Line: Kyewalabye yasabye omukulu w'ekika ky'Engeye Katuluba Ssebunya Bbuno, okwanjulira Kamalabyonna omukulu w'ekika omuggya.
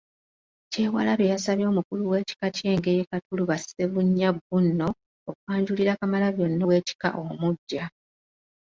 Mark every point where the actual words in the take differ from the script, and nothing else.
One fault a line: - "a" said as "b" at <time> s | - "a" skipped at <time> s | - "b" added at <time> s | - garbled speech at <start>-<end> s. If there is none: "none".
- "omukulu" skipped at 6.6 s